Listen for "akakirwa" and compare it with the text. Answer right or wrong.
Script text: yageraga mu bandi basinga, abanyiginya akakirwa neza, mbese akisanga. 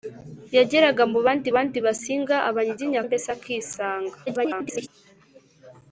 wrong